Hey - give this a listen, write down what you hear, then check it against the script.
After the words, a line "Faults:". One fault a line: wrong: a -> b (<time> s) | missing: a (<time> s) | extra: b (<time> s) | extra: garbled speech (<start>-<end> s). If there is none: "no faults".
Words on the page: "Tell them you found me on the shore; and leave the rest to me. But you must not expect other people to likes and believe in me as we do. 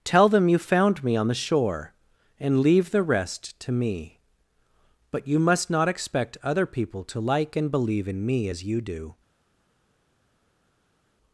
"Tell them you found me on the shore; and leave the rest to me. But you must not expect other people to like and believe in me as you do.
Faults:
wrong: likes -> like (7.2 s)
wrong: we -> you (8.6 s)